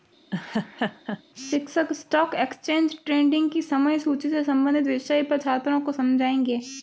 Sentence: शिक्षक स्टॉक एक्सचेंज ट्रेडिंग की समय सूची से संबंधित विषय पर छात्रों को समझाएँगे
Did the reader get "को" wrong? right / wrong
right